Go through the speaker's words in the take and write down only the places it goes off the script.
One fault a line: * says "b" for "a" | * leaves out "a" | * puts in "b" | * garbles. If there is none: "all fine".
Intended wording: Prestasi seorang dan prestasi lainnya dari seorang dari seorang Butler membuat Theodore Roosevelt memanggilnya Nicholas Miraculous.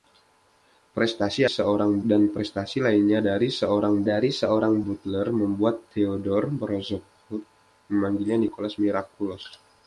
all fine